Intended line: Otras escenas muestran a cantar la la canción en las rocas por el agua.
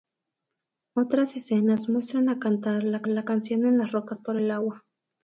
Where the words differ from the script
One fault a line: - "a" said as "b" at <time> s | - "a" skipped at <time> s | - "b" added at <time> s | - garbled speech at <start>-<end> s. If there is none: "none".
none